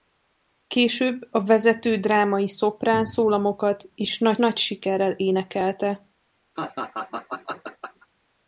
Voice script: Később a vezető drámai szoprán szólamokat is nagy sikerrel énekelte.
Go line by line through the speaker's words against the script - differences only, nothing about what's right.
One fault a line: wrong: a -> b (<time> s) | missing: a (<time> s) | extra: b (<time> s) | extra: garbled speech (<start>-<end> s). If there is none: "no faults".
extra: nagy (4.4 s)